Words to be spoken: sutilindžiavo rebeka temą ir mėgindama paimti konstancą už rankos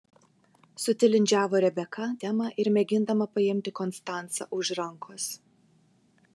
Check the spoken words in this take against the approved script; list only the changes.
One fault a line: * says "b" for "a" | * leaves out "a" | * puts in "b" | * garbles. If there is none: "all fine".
all fine